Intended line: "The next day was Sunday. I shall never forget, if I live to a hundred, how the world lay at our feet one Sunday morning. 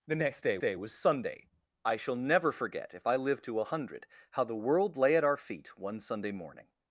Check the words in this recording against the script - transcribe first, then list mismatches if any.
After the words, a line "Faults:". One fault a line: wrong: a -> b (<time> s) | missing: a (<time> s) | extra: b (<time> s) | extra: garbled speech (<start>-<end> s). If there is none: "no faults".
"The next day day was Sunday. I shall never forget, if I live to a hundred, how the world lay at our feet one Sunday morning.
Faults:
extra: day (0.6 s)